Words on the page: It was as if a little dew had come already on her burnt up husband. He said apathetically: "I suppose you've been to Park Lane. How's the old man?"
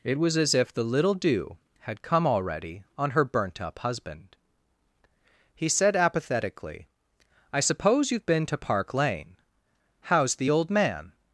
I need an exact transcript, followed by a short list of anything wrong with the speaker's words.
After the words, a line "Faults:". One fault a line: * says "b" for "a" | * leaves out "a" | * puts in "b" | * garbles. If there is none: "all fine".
It was as if the little dew had come already on her burnt up husband. He said apathetically: "I suppose you've been to Park Lane. How's the old man?"
Faults:
* says "the" for "a"